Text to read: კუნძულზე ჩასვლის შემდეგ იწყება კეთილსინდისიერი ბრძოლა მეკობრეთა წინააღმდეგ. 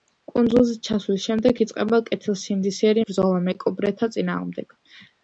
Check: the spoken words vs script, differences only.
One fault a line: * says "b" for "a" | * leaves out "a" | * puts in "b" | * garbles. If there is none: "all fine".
all fine